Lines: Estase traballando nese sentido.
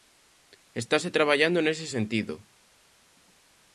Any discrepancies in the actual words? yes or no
no